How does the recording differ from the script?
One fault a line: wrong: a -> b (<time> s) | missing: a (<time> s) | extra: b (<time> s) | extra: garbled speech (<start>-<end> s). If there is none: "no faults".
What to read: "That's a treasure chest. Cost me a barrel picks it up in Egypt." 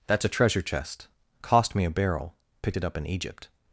wrong: picks -> picked (2.6 s)